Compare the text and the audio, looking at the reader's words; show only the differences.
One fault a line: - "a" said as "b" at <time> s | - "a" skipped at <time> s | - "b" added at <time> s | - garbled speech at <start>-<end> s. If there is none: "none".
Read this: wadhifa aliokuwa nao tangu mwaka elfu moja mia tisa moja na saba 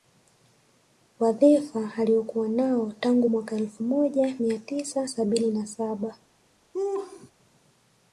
- "moja" said as "sabini" at 5.1 s